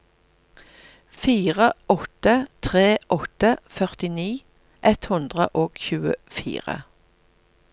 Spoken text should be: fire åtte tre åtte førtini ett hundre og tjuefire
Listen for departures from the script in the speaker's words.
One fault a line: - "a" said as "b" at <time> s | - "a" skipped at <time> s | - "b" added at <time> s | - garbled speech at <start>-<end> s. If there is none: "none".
none